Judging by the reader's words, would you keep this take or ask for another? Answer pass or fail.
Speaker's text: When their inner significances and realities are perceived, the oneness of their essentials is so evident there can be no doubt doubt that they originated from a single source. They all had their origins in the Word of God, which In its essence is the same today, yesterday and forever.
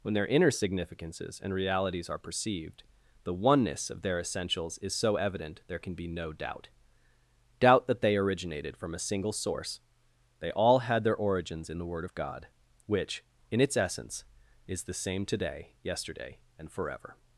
pass